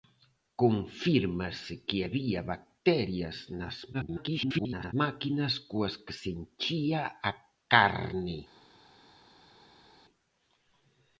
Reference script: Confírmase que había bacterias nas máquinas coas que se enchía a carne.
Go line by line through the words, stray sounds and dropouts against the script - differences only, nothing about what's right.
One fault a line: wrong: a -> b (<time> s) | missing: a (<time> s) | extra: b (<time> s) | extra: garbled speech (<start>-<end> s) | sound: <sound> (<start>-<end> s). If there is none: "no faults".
extra: garbled speech (3.9-4.9 s)